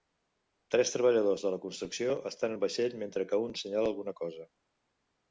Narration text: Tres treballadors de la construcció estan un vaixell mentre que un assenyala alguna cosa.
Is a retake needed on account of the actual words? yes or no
no